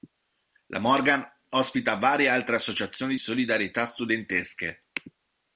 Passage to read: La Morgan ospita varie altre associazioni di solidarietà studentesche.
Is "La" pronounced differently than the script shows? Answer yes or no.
no